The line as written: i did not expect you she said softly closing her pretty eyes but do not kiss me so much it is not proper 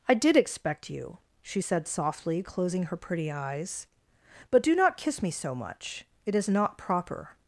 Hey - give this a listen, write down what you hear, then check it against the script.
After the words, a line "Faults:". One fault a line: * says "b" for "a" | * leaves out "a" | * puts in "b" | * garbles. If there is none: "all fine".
i did expect you she said softly closing her pretty eyes but do not kiss me so much it is not proper
Faults:
* leaves out "not"